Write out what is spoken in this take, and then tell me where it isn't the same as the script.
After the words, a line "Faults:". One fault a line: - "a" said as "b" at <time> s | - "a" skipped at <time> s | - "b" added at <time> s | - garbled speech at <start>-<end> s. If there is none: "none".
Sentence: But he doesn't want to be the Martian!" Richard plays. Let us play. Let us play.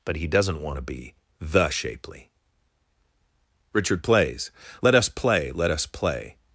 But he doesn't want to be the Shapely!" Richard plays. Let us play. Let us play.
Faults:
- "Martian" said as "Shapely" at 1.7 s